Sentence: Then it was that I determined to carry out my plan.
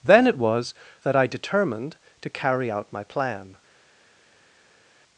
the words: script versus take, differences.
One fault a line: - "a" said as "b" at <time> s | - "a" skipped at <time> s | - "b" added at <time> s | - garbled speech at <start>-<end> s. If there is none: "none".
none